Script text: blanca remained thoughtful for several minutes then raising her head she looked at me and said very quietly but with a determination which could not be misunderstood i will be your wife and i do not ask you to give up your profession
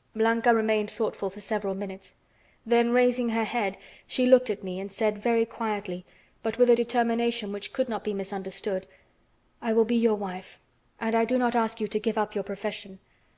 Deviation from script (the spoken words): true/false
false